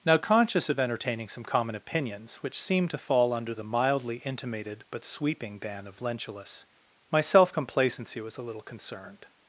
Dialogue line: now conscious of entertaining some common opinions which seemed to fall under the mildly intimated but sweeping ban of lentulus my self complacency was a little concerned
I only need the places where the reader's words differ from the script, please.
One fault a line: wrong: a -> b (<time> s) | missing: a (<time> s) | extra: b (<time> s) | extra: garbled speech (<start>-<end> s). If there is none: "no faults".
no faults